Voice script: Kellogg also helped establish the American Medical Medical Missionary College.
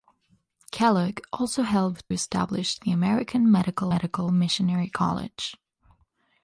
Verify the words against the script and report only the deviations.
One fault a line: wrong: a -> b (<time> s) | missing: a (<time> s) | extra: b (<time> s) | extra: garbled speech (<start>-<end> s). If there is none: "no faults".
no faults